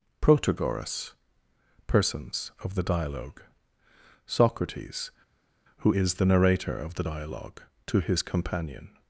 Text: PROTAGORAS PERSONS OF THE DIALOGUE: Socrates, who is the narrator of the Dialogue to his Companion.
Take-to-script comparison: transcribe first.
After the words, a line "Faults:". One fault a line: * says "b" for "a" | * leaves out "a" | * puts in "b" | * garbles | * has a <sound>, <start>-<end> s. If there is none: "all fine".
PROTAGORAS PERSONS OF THE DIALOGUE: Socrates, who is the narrator of the Dialogue to his Companion.
Faults:
all fine